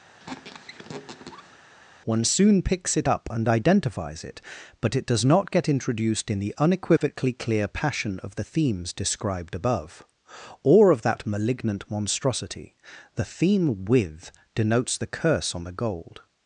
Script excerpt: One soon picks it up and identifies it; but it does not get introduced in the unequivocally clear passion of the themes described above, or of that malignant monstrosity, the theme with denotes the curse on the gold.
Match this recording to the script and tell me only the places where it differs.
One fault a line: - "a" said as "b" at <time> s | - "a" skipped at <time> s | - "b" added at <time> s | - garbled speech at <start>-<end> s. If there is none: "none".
none